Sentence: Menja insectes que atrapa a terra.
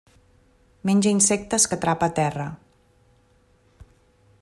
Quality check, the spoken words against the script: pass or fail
pass